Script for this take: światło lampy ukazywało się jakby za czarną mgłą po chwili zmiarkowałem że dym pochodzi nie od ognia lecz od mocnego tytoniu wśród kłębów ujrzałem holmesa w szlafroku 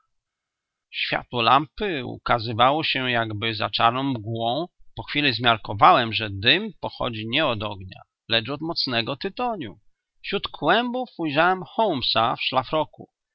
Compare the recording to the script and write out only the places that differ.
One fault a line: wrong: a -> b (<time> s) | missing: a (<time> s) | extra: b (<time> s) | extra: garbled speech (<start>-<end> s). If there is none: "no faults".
no faults